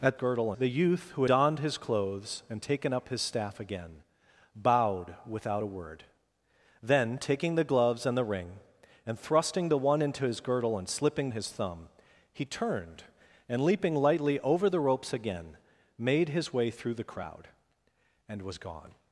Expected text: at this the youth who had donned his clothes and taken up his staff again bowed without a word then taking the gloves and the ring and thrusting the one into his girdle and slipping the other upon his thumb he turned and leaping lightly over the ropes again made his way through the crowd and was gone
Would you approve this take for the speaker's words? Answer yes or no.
no